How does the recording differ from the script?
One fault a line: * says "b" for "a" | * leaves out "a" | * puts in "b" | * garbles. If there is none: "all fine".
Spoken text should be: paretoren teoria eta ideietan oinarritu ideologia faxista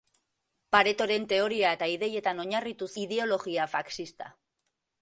all fine